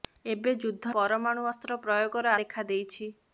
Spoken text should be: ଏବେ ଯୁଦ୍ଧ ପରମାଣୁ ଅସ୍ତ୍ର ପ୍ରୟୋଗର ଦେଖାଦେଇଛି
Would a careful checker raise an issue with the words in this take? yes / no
no